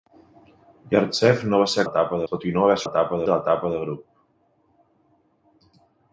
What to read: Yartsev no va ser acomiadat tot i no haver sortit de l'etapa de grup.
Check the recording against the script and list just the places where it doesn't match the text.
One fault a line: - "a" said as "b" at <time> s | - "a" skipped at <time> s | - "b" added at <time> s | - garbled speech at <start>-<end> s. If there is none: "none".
- "acomiadat" said as "l'etapa" at 1.8 s
- "sortit" said as "l'etapa" at 2.8 s